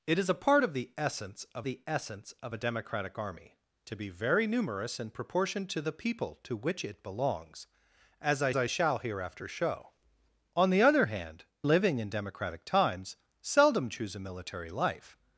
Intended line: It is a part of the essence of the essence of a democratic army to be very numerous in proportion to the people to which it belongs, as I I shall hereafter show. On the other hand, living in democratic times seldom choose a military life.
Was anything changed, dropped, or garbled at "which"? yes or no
no